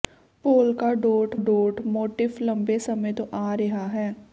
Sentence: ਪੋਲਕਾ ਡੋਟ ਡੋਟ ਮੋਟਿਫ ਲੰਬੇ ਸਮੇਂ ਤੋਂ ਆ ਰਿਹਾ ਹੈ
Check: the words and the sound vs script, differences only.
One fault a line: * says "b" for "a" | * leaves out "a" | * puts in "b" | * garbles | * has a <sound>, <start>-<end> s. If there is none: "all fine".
all fine